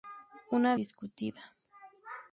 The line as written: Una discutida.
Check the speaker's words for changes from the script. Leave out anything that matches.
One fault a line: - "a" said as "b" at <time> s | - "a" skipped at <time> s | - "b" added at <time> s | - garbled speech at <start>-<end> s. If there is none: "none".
none